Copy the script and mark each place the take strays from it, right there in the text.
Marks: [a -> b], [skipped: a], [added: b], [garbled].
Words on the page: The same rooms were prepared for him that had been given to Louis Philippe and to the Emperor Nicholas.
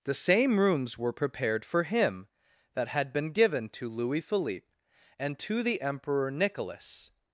The same rooms were prepared for him that had been given to Louis Philippe and to the Emperor Nicholas.